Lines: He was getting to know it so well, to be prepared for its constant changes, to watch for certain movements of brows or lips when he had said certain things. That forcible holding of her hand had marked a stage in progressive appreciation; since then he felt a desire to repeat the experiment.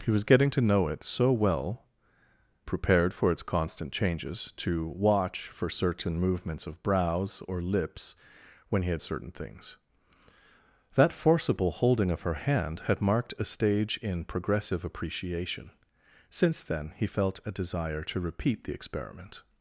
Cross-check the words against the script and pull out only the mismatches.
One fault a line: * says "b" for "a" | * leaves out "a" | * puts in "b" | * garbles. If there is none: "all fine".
* leaves out "to be"
* leaves out "said"